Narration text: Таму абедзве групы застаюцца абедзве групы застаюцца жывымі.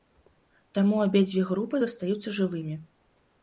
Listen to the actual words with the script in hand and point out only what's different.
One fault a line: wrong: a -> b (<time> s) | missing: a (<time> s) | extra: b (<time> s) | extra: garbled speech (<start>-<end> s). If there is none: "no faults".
missing: абедзве групы застаюцца (2.4 s)